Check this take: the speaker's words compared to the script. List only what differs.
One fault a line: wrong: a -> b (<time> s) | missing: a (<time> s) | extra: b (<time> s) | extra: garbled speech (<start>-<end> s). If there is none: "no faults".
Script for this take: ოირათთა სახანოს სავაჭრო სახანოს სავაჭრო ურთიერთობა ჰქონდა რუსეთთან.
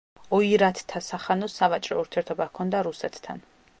missing: სახანოს სავაჭრო (2.0 s)